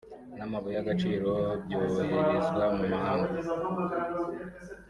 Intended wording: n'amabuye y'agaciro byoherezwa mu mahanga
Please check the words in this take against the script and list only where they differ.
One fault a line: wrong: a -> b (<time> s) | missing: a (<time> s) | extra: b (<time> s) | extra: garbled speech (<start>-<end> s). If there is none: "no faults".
no faults